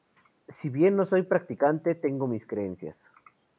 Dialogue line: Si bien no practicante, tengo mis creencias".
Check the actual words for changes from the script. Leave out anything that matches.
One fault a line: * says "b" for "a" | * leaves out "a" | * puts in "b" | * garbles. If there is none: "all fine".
* puts in "soy"